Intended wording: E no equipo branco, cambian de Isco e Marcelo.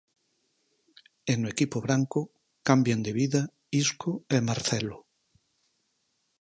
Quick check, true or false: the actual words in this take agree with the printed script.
false